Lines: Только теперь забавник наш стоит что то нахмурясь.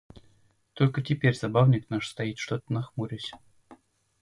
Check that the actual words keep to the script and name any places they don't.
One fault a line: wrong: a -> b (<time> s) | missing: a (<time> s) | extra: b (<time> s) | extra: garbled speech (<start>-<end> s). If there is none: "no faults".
no faults